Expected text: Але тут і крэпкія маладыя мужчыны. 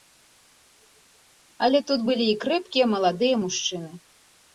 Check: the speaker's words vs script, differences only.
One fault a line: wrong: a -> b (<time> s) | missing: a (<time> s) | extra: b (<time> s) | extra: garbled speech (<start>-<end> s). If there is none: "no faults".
extra: былі (2.1 s)